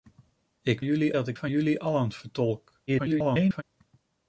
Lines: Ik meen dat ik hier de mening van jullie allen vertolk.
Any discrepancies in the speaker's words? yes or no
yes